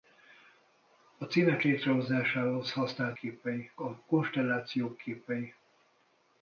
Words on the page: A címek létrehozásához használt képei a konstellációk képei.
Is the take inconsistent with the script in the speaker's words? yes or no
no